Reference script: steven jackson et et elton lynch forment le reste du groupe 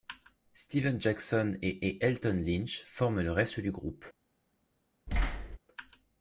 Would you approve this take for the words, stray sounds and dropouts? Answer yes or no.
no